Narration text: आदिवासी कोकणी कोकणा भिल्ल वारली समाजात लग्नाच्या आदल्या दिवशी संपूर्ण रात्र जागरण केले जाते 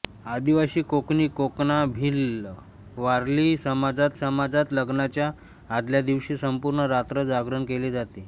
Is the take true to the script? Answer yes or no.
no